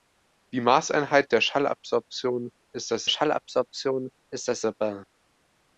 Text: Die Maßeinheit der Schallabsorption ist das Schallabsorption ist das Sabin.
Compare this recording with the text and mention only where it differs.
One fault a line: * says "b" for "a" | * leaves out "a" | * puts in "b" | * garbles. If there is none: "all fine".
all fine